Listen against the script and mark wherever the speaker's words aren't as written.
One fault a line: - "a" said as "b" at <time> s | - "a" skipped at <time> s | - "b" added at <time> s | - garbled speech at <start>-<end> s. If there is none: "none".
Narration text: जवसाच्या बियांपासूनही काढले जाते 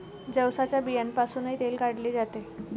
- "तेल" added at 1.6 s